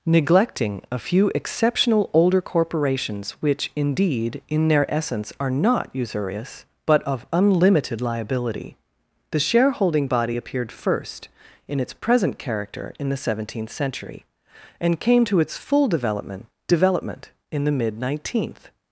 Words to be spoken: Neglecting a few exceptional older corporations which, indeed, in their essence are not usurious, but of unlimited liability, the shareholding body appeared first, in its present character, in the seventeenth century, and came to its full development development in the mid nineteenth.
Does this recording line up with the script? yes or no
yes